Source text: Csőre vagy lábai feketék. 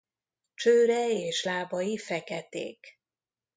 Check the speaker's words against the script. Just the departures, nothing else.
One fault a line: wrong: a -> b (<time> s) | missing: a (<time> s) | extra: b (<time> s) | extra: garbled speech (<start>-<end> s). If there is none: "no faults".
wrong: vagy -> és (1.1 s)